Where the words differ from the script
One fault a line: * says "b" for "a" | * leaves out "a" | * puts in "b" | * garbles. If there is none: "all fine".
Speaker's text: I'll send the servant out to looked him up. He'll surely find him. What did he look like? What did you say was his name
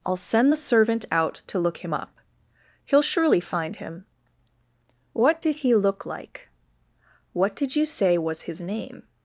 * says "look" for "looked"